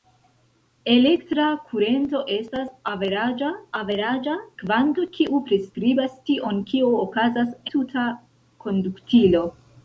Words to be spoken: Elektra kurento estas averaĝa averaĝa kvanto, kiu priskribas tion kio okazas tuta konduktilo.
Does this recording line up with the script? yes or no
yes